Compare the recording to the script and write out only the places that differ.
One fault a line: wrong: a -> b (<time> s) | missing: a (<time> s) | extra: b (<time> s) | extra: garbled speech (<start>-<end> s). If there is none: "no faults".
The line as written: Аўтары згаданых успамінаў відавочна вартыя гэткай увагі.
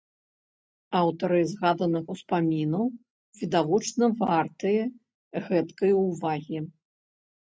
no faults